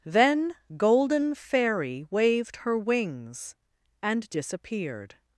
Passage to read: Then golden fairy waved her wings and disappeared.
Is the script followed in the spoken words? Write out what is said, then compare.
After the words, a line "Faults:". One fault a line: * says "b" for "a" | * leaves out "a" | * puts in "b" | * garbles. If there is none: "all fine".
Then golden fairy waved her wings and disappeared.
Faults:
all fine